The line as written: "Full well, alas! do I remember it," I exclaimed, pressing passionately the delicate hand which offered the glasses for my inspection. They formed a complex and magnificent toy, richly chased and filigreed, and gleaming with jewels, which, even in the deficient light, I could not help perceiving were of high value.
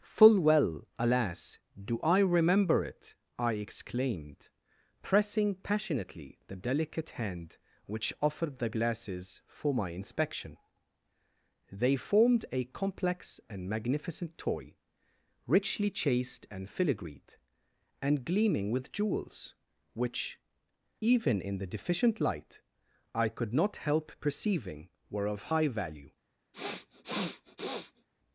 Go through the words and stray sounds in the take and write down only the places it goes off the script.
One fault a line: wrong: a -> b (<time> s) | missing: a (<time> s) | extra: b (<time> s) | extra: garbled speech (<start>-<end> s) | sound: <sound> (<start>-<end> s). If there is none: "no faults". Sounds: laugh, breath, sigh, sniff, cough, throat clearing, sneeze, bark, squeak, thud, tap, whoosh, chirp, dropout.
sound: sniff (26.5-28.1 s)